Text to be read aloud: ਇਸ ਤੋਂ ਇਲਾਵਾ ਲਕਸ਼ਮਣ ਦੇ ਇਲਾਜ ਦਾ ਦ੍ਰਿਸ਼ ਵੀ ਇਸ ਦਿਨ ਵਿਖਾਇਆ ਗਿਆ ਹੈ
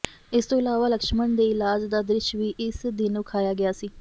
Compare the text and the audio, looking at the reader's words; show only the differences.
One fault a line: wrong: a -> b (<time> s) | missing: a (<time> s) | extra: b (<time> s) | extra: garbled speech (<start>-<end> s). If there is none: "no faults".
wrong: ਹੈ -> ਸੀ (3.7 s)